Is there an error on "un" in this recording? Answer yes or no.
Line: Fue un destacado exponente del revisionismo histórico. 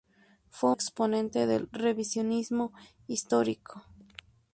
yes